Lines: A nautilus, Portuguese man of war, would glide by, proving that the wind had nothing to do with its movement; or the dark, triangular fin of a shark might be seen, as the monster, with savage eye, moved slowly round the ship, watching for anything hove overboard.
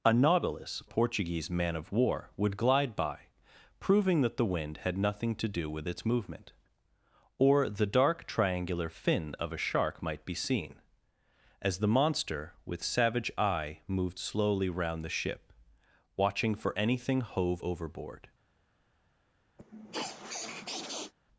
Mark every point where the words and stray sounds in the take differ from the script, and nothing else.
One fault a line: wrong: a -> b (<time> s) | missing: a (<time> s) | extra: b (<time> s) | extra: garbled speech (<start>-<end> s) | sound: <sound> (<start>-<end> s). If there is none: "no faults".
sound: sniff (19.6-21.1 s)